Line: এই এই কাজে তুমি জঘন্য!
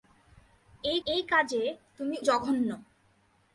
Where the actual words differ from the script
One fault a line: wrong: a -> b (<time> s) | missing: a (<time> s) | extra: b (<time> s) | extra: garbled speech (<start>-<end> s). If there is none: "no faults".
no faults